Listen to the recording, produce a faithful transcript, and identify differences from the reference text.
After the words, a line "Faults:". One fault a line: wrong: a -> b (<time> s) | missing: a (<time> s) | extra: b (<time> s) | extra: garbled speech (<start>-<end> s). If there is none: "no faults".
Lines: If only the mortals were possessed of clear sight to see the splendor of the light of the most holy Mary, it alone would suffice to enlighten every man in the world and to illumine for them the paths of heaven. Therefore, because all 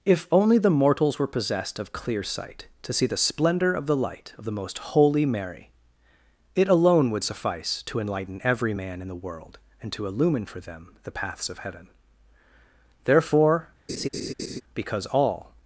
If only the mortals were possessed of clear sight to see the splendor of the light of the most holy Mary, it alone would suffice to enlighten every man in the world and to illumine for them the paths of heaven. Therefore, because all
Faults:
no faults